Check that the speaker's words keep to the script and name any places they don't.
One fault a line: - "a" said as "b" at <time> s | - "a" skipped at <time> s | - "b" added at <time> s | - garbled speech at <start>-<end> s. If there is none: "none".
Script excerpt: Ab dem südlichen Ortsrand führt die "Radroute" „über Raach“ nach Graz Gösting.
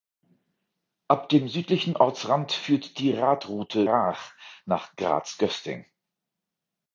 - "über" skipped at 3.8 s